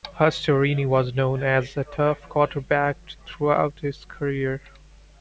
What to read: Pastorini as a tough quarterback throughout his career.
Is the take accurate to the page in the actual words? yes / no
no